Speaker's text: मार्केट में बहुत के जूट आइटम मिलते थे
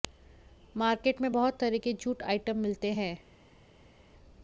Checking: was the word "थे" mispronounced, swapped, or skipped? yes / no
yes